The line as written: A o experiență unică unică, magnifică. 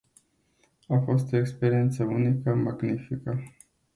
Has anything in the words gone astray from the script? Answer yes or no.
yes